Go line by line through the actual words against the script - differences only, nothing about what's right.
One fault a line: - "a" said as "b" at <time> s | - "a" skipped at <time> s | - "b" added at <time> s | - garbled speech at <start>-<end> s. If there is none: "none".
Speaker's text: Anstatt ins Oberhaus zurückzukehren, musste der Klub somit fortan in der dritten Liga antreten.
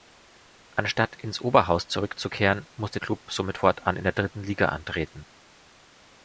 - "der" skipped at 3.0 s